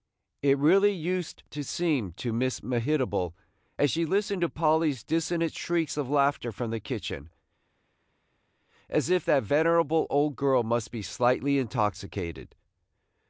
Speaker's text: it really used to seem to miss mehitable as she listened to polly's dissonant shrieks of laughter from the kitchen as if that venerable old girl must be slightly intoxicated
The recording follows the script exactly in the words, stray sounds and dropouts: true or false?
true